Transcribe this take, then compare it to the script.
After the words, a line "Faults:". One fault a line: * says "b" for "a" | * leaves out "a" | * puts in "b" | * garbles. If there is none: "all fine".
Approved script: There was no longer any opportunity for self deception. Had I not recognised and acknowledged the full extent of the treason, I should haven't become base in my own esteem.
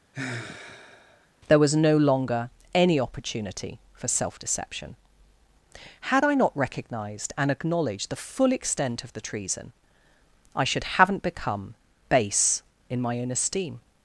There was no longer any opportunity for self deception. Had I not recognised and acknowledged the full extent of the treason, I should haven't become base in my own esteem.
Faults:
all fine